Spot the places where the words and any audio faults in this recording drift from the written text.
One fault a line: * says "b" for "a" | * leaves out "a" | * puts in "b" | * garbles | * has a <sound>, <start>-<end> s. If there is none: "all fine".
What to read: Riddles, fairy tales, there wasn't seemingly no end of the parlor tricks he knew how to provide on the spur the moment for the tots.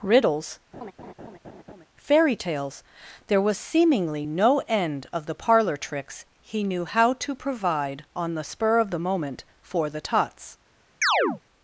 * has a laugh, 0.7-1.9 s
* says "was" for "wasn't"
* puts in "of"
* has a chirp, 11.0-11.4 s